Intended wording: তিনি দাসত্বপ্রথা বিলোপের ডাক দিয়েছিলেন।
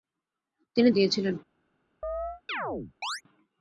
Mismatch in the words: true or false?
true